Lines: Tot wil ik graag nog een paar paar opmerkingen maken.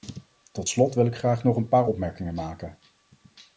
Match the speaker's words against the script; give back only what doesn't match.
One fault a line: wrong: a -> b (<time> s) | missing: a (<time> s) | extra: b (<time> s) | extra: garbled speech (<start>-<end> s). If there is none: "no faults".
extra: slot (0.7 s)
missing: paar (1.9 s)